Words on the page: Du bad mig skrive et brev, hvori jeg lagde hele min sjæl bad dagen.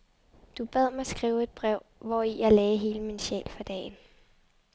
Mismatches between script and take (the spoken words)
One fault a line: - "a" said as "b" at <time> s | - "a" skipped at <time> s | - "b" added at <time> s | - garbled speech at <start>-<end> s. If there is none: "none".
- "bad" said as "for" at 3.5 s